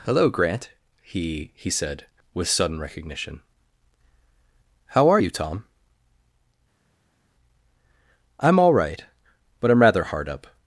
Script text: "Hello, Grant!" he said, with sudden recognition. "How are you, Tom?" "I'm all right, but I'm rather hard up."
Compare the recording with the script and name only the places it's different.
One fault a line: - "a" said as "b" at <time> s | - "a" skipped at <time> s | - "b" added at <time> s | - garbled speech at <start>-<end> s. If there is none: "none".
- "he" added at 1.6 s